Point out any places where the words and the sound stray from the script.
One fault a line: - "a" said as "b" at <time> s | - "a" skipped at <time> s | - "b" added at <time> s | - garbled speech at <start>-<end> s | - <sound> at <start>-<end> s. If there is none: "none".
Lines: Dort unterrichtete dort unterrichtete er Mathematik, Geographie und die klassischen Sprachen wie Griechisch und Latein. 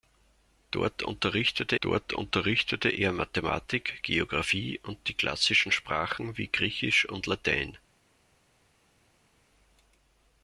none